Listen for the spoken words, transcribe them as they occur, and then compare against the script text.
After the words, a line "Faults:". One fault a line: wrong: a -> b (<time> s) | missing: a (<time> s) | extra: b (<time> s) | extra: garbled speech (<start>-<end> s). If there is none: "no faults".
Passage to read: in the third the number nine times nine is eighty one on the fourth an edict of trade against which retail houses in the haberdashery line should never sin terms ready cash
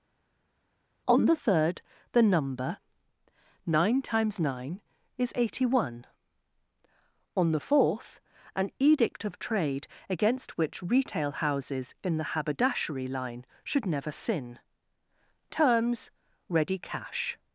on the third the number nine times nine is eighty one on the fourth an edict of trade against which retail houses in the haberdashery line should never sin terms ready cash
Faults:
wrong: in -> on (1.1 s)